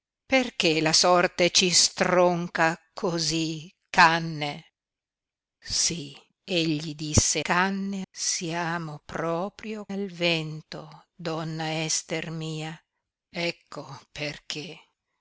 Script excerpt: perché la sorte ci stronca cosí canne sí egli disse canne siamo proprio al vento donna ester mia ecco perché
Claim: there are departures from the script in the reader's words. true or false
false